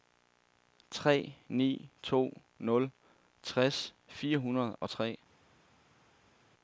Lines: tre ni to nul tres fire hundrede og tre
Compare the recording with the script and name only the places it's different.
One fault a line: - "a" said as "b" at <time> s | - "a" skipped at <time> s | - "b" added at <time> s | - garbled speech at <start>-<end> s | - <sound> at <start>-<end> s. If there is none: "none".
none